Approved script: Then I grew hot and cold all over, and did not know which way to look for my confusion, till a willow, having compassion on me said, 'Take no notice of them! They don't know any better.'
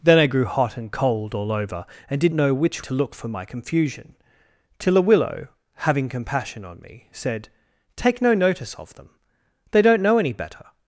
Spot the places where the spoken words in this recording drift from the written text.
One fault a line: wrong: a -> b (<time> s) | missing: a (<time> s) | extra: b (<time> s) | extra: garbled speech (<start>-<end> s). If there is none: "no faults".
missing: not (2.3 s)
missing: way (2.8 s)